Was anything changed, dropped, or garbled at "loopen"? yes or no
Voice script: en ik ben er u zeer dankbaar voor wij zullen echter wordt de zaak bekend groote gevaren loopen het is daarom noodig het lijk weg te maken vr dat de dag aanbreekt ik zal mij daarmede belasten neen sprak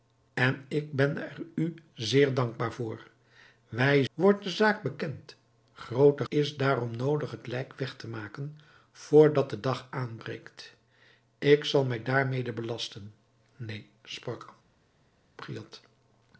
yes